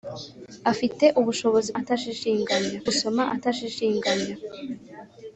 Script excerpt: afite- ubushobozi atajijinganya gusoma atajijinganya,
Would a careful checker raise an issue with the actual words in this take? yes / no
no